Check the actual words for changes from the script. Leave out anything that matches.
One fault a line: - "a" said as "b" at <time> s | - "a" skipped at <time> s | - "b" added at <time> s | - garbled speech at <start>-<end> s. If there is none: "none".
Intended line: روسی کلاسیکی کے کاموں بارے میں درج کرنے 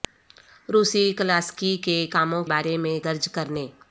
none